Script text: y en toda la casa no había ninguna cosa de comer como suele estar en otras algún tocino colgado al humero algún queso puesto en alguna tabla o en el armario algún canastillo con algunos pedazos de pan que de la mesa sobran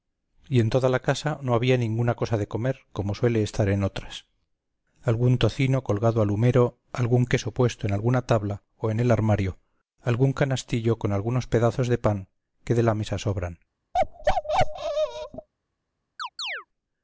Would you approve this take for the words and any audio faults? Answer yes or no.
no